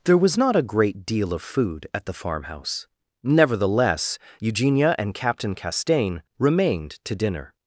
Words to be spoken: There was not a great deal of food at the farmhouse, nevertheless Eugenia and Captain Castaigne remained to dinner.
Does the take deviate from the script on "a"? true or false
false